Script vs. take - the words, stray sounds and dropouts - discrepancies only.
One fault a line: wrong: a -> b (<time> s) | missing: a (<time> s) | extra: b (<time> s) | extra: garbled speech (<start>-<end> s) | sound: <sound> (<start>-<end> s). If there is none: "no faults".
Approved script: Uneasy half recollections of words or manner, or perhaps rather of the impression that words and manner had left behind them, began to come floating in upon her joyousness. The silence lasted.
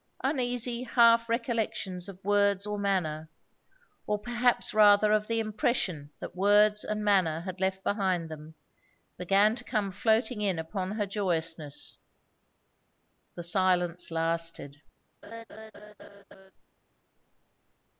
sound: laugh (15.2-16.5 s)